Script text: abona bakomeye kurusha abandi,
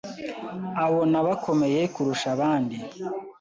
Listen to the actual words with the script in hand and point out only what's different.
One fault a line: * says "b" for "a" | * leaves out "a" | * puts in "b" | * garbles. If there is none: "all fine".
all fine